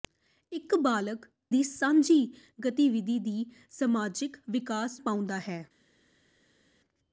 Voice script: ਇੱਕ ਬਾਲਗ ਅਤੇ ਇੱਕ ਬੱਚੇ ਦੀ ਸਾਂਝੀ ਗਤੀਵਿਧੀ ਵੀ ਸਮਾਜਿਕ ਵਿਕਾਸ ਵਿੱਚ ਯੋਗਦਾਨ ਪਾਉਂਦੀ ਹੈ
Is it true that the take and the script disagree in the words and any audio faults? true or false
true